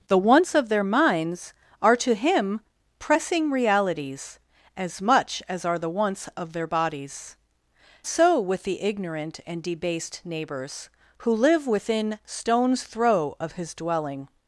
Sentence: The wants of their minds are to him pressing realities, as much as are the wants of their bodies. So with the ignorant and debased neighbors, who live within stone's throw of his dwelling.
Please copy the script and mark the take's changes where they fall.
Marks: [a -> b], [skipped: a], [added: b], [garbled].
The wants of their minds are to him pressing realities, as much as are the wants of their bodies. So with the ignorant and debased neighbors, who live within stone's throw of his dwelling.